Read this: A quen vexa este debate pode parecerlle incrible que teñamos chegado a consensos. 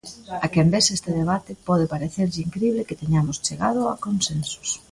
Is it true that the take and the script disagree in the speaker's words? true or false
false